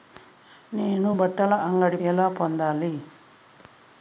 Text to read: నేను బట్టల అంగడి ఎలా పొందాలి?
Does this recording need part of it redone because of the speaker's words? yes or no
no